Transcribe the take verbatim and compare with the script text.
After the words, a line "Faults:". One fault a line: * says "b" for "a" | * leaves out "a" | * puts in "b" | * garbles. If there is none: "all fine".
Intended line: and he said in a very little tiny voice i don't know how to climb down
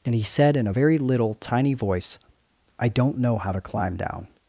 and he said in a very little tiny voice i don't know how to climb down
Faults:
all fine